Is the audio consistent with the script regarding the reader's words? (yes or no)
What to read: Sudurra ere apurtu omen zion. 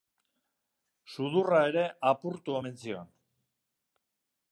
yes